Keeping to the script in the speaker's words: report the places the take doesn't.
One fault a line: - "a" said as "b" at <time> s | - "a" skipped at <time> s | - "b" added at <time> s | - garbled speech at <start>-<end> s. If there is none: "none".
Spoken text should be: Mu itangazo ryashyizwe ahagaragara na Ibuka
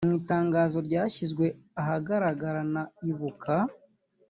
none